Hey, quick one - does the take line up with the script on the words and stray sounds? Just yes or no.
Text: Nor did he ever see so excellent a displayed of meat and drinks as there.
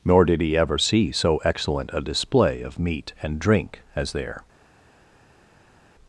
no